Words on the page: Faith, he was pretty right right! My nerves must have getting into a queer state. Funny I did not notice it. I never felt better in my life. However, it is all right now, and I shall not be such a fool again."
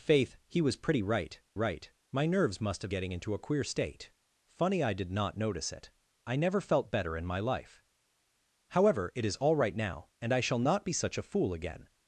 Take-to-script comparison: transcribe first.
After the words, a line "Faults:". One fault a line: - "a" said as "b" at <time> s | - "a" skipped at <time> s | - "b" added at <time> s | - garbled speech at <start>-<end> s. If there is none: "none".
Faith, he was pretty right right! My nerves must have getting into a queer state. Funny I did not notice it. I never felt better in my life. However, it is all right now, and I shall not be such a fool again."
Faults:
none